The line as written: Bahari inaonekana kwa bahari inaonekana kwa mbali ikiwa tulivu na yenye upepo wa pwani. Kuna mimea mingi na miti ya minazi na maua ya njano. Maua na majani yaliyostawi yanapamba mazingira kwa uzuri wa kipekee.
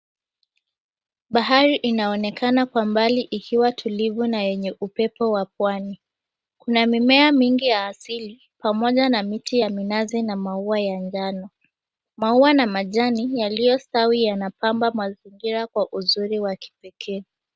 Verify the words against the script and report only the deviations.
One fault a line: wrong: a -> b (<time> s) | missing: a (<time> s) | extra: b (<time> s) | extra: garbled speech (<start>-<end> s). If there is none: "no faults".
missing: bahari inaonekana kwa (2.9 s)
extra: ya asili pamoja (7.7 s)